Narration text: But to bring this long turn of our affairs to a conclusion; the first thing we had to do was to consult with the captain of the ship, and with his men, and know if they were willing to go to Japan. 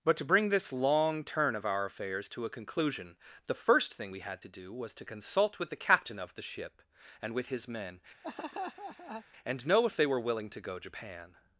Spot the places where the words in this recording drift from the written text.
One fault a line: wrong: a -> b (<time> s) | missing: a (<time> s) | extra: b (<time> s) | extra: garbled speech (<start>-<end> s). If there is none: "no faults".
missing: to (10.8 s)